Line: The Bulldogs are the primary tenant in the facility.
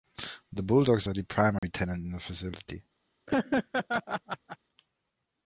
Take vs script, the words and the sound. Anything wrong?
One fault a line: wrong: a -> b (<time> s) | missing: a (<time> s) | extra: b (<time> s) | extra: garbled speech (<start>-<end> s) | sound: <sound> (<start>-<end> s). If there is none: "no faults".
sound: dropout (1.6-1.6 s)
sound: laugh (3.3-4.6 s)